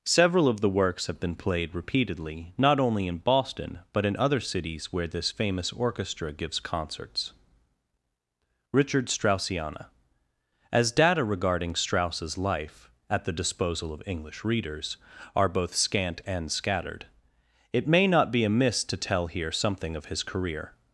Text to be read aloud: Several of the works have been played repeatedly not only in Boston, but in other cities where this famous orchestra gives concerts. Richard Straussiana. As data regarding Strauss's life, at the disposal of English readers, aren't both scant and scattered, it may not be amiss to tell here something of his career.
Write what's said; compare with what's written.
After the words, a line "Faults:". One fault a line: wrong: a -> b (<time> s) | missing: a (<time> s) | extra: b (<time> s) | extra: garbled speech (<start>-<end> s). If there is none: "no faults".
Several of the works have been played repeatedly not only in Boston, but in other cities where this famous orchestra gives concerts. Richard Straussiana. As data regarding Strauss's life, at the disposal of English readers, are both scant and scattered, it may not be amiss to tell here something of his career.
Faults:
wrong: aren't -> are (15.4 s)